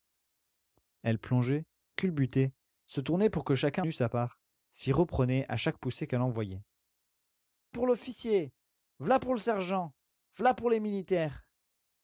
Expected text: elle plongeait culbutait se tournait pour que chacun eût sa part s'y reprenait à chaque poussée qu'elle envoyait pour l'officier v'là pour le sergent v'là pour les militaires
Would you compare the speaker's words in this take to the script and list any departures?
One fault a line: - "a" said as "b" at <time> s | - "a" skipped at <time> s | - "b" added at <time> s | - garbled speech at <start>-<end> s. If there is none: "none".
none